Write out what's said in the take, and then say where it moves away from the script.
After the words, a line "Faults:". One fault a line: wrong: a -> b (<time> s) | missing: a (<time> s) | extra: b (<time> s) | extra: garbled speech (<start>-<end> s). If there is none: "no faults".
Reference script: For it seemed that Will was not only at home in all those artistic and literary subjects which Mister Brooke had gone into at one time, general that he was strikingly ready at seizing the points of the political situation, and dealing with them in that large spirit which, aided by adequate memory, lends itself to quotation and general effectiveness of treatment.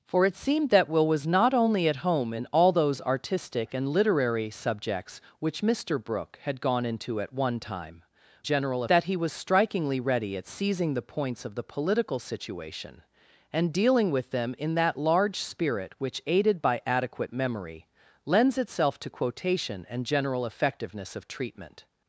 For it seemed that Will was not only at home in all those artistic and literary subjects which Mister Brooke had gone into at one time, general that he was strikingly ready at seizing the points of the political situation, and dealing with them in that large spirit which, aided by adequate memory, lends itself to quotation and general effectiveness of treatment.
Faults:
no faults